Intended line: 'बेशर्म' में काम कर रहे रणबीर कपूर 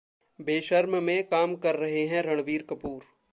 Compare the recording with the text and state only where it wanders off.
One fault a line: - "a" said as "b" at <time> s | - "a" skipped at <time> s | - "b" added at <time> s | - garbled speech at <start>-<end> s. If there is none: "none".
- "हैं" added at 2.1 s